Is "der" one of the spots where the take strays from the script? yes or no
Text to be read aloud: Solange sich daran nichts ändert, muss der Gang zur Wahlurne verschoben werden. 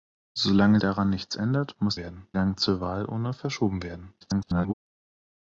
yes